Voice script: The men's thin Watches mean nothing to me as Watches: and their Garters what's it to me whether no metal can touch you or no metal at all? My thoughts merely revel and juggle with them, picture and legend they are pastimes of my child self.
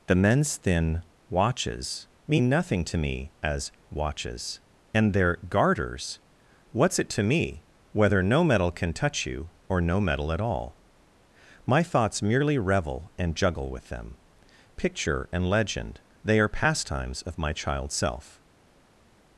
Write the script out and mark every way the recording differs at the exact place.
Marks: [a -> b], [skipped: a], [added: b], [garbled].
The men's thin Watches mean nothing to me as Watches: and their Garters what's it to me whether no metal can touch you or no metal at all? My thoughts merely revel and juggle with them, picture and legend they are pastimes of my child self.